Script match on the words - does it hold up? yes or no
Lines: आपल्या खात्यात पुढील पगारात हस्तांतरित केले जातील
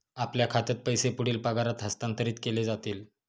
no